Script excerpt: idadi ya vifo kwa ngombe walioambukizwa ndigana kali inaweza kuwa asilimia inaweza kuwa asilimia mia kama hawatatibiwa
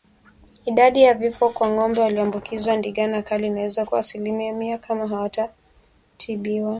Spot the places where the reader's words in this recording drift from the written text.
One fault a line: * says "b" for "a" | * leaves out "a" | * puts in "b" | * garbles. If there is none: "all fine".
* leaves out "inaweza kuwa asilimia"